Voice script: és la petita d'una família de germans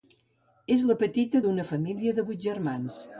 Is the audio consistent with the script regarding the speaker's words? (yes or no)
no